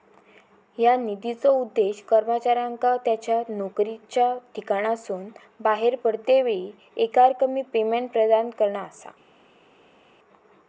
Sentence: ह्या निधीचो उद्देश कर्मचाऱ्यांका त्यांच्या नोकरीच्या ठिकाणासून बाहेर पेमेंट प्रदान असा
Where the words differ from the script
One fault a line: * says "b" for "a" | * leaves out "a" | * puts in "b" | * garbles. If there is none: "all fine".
* puts in "पडतेवेळी एकरकमी"
* puts in "करणा"